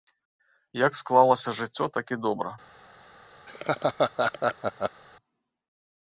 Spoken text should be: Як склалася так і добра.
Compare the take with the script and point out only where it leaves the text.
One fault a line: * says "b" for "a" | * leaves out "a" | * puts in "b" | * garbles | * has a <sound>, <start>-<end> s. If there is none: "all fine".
* puts in "жыццё"
* has a laugh, 3.5-5.0 s